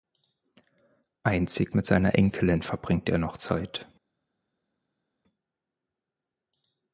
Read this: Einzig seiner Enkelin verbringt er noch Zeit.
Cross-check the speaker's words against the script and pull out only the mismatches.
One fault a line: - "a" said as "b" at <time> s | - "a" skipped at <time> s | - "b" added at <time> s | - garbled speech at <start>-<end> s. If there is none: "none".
- "mit" added at 1.7 s